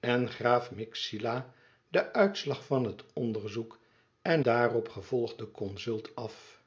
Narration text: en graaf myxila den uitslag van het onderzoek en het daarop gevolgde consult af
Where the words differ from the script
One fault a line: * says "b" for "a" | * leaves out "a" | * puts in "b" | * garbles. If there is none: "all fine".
* leaves out "het"